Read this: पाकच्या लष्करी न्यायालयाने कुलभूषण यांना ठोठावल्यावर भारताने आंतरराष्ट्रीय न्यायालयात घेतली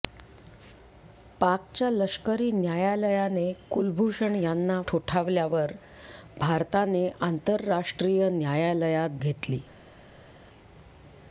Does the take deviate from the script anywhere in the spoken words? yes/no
no